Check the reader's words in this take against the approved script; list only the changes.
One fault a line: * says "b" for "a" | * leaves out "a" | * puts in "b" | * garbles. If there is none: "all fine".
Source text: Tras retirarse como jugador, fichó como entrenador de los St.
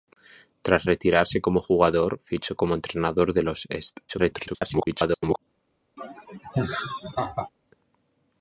* garbles